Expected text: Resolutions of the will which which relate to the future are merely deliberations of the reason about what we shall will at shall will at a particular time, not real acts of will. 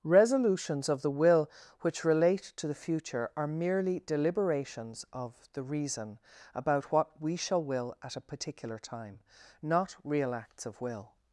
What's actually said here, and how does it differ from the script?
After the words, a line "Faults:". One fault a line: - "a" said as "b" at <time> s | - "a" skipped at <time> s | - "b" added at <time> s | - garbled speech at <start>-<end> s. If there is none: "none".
Resolutions of the will which relate to the future are merely deliberations of the reason about what we shall will at a particular time, not real acts of will.
Faults:
- "which" skipped at 2.0 s
- "shall will at" skipped at 8.2 s